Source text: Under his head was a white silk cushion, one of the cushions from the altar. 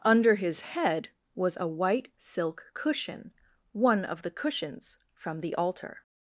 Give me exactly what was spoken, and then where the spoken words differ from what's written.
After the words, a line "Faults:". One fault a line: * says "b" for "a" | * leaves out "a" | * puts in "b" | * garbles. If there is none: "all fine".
Under his head was a white silk cushion, one of the cushions from the altar.
Faults:
all fine